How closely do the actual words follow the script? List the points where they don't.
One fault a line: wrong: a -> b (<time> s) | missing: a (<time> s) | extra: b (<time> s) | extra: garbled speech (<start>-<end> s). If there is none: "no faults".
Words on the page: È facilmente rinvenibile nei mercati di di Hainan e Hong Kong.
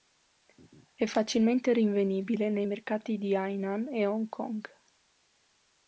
missing: di (3.4 s)